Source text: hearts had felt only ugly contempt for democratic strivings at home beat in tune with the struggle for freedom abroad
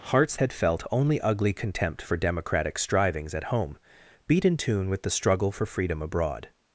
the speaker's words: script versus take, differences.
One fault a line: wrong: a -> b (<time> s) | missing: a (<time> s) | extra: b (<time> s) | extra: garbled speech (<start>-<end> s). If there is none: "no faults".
no faults